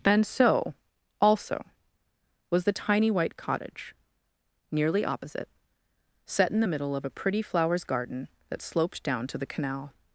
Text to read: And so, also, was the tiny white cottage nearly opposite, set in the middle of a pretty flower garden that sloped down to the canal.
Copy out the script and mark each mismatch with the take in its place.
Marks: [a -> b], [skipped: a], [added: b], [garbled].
And so, also, was the tiny white cottage nearly opposite, set in the middle of a pretty [flower -> flowers] garden that sloped down to the canal.